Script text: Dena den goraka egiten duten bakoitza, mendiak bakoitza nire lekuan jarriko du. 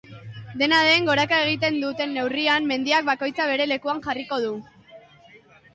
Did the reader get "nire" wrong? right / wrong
wrong